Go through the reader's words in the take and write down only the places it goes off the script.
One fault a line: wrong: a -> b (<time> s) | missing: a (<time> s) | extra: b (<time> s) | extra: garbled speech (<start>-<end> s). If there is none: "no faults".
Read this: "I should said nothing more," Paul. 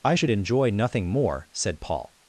wrong: said -> enjoy (0.3 s)
extra: said (1.5 s)